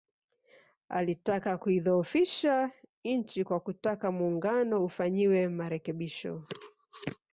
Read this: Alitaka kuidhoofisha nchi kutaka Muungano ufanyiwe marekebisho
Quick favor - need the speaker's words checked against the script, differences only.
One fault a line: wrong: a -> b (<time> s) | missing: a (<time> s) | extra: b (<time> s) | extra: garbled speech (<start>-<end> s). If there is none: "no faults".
extra: kwa (3.4 s)